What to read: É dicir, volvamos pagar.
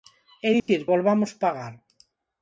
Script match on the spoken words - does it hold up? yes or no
yes